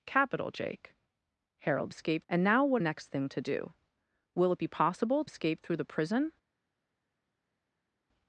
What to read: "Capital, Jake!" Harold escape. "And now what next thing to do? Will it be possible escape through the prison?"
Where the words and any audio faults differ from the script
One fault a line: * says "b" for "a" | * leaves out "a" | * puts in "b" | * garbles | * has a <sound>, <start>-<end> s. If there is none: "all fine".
all fine